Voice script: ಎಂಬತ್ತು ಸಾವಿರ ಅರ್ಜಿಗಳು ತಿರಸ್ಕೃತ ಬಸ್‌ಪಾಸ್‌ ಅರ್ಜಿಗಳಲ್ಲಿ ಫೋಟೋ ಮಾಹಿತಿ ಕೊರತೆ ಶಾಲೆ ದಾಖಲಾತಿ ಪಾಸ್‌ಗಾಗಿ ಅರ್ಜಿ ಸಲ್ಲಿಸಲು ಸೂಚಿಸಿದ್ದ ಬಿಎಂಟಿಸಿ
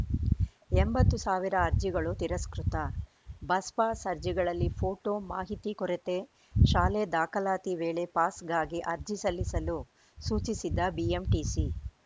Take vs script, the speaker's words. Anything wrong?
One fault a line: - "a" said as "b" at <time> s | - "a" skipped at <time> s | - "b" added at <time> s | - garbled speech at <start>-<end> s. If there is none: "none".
- "ವೇಳೆ" added at 7.8 s